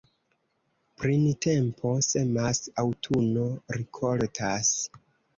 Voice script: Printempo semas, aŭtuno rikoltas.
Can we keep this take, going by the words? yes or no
yes